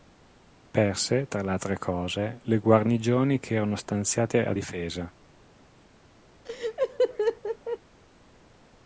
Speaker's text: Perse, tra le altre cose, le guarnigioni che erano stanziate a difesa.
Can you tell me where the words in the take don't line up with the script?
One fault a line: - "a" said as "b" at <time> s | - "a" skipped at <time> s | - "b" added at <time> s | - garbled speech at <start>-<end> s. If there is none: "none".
none